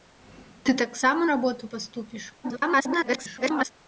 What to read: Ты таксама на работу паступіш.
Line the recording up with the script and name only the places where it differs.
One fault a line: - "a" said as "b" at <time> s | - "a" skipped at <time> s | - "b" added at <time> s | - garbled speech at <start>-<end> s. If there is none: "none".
- "на" skipped at 1.2 s
- garbled speech at 2.4-3.7 s